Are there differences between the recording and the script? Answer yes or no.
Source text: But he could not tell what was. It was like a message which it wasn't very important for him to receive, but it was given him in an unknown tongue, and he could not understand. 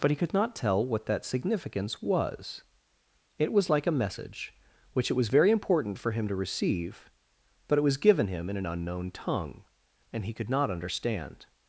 yes